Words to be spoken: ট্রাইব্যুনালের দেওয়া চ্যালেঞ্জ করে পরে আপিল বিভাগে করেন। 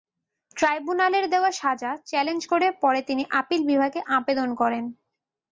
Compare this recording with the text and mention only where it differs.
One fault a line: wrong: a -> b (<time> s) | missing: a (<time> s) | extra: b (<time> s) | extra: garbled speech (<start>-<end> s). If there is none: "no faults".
extra: সাজা (1.6 s)
extra: তিনি (3.0 s)
extra: আবেদন (4.2 s)